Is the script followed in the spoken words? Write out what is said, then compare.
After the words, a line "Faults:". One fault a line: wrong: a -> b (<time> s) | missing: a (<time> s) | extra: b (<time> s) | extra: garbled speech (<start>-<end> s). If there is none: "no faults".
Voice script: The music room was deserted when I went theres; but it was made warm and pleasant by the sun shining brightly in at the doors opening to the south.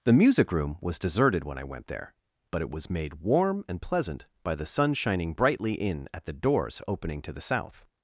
The music room was deserted when I went there; but it was made warm and pleasant by the sun shining brightly in at the doors opening to the south.
Faults:
wrong: theres -> there (1.9 s)